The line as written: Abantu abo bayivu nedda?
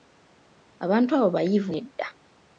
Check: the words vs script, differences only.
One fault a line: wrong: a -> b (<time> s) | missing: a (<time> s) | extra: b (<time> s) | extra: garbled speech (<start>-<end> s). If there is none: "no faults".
no faults